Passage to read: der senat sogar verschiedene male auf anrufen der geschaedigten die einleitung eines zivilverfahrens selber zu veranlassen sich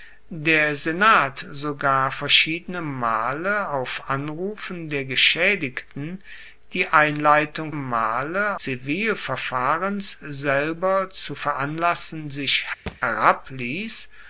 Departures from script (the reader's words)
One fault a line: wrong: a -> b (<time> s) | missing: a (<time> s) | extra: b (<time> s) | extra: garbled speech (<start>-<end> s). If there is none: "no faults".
wrong: eines -> male (7.7 s)